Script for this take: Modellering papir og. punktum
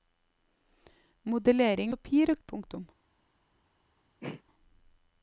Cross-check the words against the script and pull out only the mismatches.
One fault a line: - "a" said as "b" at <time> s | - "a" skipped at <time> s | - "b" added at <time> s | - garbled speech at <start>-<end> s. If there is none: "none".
none